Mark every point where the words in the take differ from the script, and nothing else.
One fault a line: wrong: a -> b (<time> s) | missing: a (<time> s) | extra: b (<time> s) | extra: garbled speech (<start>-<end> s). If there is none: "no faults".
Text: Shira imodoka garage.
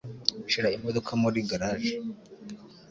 extra: muri (1.2 s)